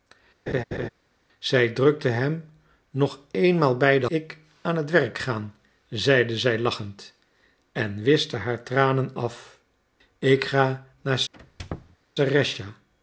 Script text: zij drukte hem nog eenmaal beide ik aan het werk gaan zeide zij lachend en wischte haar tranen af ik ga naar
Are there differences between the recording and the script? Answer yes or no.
no